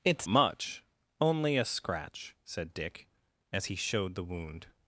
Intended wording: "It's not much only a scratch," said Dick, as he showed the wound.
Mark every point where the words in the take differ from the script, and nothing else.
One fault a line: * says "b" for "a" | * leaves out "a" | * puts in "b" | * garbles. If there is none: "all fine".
* leaves out "not"